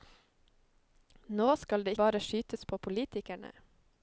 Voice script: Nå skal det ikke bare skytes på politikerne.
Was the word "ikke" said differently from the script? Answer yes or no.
yes